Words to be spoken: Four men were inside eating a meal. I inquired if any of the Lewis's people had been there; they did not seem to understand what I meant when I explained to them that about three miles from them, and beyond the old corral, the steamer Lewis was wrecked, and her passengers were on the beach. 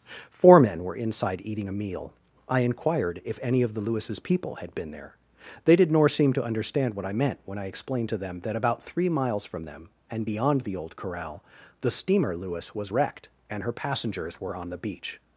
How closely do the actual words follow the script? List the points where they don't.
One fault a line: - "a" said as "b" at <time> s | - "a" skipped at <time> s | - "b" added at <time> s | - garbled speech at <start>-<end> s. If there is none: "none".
- "not" said as "nor" at 5.9 s